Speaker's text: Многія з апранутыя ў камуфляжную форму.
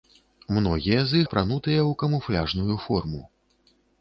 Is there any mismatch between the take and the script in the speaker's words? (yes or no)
no